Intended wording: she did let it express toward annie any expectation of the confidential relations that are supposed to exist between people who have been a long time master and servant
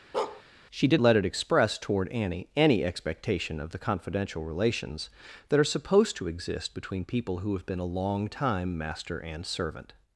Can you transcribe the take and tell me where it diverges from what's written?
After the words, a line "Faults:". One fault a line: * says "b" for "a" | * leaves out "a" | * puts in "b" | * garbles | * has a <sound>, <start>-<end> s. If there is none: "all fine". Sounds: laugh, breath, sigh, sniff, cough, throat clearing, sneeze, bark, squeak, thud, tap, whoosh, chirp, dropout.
she did let it express toward annie any expectation of the confidential relations that are supposed to exist between people who have been a long time master and servant
Faults:
* has a bark, 0.1-0.4 s